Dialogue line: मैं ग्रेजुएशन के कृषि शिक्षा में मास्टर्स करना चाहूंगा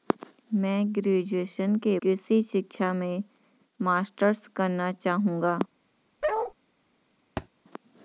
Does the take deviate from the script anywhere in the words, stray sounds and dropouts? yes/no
yes